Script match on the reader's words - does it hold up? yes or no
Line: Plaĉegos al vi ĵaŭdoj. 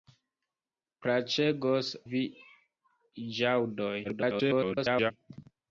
no